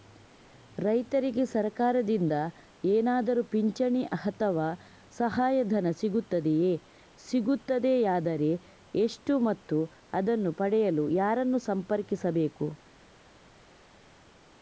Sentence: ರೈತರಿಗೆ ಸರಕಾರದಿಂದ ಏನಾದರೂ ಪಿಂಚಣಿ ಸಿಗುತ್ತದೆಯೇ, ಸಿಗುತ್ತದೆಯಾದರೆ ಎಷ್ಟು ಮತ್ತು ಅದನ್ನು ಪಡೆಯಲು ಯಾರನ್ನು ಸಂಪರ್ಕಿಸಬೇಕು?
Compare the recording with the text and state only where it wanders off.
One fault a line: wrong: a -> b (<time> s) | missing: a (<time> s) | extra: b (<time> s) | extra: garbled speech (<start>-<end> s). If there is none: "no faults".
extra: ಅಥವಾ ಸಹಾಯಧನ (4.2 s)